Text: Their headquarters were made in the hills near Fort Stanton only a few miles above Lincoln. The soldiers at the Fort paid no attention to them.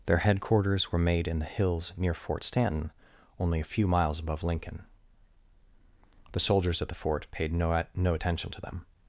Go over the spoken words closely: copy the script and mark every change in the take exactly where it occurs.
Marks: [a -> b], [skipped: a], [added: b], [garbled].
Their headquarters were made in the hills near Fort Stanton only a few miles above Lincoln. The soldiers at the Fort paid no [added: no] attention to them.